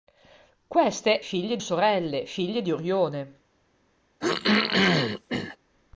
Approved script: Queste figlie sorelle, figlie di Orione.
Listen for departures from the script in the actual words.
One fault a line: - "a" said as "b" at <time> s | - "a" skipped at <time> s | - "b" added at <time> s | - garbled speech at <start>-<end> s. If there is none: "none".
none